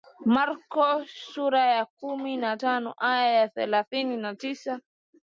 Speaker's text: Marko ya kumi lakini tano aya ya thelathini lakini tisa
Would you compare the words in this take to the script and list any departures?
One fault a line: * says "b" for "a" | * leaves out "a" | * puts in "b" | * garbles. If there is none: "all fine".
* puts in "sura"
* says "na" for "lakini"
* says "na" for "lakini"